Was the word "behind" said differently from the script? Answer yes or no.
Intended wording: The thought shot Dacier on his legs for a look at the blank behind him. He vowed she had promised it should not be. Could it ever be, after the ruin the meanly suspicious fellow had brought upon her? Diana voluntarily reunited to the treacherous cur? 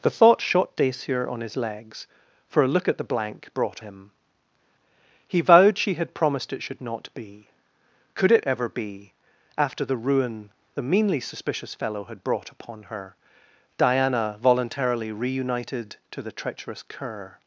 yes